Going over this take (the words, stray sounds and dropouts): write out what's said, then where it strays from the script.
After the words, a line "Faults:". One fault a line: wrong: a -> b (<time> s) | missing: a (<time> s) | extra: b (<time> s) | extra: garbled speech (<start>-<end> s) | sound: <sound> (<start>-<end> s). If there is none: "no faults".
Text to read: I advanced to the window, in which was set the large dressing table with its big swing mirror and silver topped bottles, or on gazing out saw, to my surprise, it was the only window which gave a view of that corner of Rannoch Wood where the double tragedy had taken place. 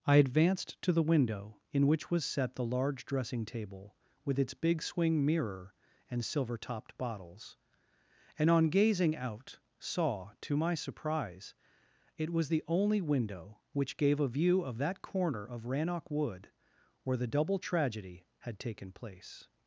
I advanced to the window, in which was set the large dressing table with its big swing mirror and silver topped bottles, and on gazing out saw, to my surprise, it was the only window which gave a view of that corner of Rannoch Wood where the double tragedy had taken place.
Faults:
wrong: or -> and (8.4 s)